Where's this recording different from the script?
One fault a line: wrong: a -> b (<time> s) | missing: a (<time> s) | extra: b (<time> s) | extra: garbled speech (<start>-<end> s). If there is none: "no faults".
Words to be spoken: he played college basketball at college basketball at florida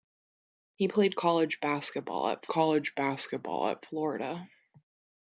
no faults